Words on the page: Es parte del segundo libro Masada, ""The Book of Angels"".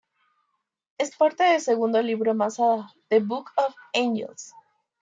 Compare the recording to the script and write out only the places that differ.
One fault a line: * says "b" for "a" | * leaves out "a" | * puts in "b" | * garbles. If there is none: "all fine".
all fine